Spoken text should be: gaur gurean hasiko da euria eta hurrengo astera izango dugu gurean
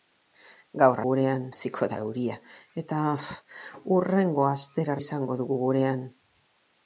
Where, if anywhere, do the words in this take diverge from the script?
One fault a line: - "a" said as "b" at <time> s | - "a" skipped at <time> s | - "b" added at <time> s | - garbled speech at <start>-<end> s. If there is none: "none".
none